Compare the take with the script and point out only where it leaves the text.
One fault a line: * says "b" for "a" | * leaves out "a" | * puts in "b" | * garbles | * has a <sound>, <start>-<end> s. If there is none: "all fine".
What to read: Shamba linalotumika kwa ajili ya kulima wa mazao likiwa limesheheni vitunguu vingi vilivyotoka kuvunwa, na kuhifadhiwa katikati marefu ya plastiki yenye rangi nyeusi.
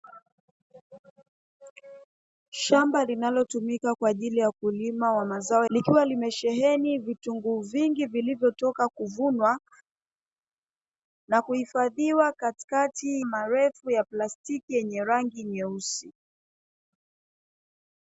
all fine